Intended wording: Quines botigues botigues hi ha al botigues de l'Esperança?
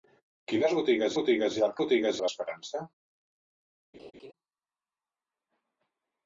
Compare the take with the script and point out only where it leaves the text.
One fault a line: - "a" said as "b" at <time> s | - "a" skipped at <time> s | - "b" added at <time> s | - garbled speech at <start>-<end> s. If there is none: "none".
none